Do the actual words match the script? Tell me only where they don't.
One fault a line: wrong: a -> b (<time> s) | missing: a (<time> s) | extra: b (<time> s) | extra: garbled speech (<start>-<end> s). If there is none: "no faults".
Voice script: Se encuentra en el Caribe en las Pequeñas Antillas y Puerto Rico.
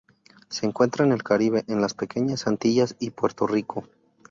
no faults